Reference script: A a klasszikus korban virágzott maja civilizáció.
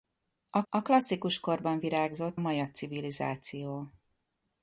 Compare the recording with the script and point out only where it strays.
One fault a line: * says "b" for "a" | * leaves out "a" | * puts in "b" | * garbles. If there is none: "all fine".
all fine